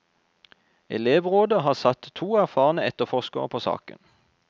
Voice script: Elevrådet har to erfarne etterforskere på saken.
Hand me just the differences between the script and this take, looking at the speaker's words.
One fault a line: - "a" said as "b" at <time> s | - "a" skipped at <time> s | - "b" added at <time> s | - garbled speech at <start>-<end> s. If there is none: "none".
- "satt" added at 1.7 s